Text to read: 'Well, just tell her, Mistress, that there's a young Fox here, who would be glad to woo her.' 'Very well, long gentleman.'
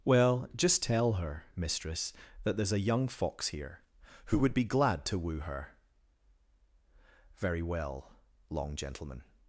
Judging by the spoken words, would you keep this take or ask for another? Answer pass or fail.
pass